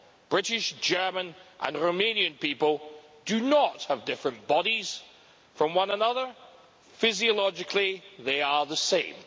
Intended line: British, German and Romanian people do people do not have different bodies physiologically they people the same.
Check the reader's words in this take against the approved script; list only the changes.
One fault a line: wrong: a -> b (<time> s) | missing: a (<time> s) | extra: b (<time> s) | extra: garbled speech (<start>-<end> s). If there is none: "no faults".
missing: people do (3.4 s)
extra: from one another (5.5 s)
wrong: people -> are (8.4 s)